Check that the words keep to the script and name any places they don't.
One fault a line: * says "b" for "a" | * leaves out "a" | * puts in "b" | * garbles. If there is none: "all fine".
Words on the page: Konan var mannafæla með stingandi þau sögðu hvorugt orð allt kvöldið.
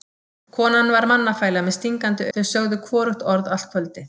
all fine